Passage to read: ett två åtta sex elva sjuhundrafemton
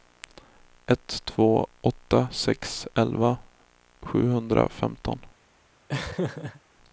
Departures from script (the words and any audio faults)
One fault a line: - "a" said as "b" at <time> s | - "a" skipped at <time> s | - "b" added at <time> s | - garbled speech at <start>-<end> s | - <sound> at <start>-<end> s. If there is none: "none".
- laugh at 5.9-6.6 s